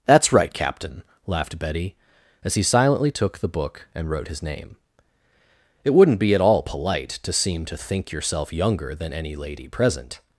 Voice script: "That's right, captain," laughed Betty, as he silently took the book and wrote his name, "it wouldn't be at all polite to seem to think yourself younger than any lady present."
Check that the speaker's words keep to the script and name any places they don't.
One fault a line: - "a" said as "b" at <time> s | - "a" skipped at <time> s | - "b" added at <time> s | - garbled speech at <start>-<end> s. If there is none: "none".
none